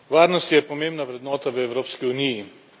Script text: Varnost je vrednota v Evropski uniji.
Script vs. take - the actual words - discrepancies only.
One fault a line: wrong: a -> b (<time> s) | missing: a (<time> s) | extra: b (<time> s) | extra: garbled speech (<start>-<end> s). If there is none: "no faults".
extra: pomembna (0.6 s)